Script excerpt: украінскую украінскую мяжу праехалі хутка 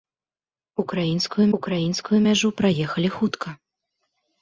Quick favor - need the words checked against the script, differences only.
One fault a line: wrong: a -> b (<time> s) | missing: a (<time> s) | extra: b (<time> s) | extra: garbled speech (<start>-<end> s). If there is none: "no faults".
no faults